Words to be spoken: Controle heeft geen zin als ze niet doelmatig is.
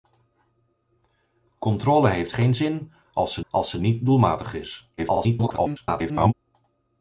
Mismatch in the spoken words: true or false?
true